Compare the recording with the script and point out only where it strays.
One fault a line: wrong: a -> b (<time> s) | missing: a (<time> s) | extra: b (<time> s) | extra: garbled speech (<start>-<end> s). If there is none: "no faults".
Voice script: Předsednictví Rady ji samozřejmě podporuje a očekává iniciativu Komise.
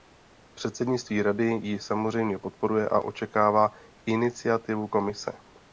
no faults